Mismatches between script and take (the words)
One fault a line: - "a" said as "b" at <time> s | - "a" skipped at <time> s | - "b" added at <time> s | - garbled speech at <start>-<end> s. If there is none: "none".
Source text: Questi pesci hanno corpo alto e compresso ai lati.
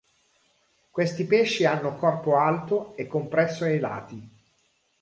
none